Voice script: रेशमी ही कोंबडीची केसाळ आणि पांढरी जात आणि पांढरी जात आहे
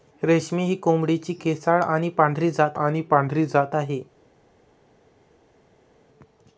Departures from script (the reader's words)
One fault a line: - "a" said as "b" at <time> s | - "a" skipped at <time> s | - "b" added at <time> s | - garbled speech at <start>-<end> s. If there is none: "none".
none